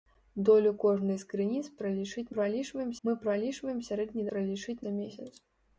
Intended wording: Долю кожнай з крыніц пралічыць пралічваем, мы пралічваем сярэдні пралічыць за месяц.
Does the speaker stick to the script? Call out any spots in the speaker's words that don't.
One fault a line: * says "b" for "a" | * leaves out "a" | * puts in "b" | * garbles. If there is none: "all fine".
all fine